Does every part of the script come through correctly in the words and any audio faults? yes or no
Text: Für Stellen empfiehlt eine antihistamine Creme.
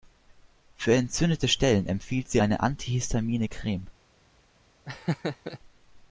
no